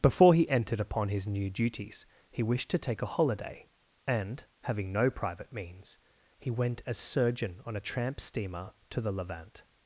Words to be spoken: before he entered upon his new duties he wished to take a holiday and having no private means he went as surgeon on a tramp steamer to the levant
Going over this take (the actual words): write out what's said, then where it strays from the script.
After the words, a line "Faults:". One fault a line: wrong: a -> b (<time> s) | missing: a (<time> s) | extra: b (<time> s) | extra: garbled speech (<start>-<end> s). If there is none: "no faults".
before he entered upon his new duties he wished to take a holiday and having no private means he went as surgeon on a tramp steamer to the levant
Faults:
no faults